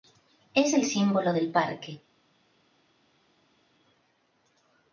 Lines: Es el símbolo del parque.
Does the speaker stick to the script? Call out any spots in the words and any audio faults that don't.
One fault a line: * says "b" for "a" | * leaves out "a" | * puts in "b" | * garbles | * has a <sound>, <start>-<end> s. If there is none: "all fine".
all fine